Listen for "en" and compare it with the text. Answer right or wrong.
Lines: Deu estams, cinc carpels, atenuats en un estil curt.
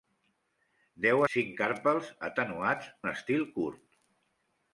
wrong